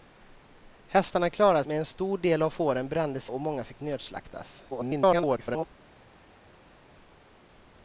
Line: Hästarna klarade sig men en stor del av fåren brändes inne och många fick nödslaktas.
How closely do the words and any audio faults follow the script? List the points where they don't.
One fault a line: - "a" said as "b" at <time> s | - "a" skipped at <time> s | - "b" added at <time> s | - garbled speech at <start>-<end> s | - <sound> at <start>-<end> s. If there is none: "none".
- "sig" skipped at 1.6 s
- "inne" skipped at 3.3 s
- garbled speech at 4.7-5.7 s